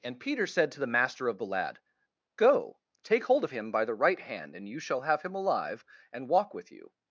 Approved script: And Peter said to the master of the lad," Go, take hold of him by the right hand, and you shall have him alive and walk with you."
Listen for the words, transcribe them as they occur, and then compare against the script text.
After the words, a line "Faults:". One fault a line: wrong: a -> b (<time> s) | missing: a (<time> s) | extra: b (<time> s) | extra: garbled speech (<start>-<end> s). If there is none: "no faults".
And Peter said to the master of the lad," Go, take hold of him by the right hand, and you shall have him alive and walk with you."
Faults:
no faults